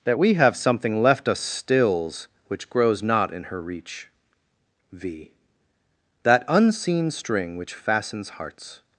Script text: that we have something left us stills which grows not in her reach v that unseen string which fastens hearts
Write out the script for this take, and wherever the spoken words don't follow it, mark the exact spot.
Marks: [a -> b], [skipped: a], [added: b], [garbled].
that we have something left us stills which grows not in her reach v that unseen string which fastens hearts